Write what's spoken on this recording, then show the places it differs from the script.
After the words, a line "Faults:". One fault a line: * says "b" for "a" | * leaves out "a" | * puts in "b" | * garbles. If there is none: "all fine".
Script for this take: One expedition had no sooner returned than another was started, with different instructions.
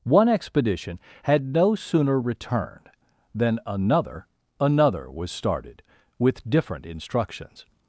One expedition had no sooner returned than another another was started, with different instructions.
Faults:
* puts in "another"